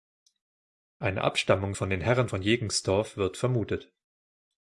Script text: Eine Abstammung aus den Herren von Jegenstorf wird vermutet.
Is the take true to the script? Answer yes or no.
no